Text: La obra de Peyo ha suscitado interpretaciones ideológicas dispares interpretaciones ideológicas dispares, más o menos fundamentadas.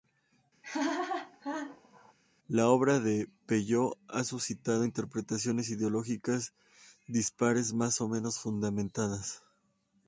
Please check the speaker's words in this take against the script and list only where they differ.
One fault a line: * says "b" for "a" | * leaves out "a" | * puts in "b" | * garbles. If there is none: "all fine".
* leaves out "interpretaciones ideológicas dispares"